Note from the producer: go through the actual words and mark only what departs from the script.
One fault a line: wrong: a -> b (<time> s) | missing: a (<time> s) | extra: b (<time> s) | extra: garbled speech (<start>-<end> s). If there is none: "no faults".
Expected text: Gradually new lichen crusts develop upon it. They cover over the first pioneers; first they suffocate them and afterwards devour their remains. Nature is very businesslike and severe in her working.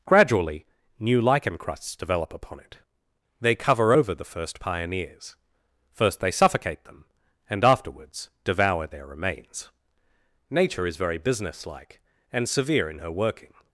no faults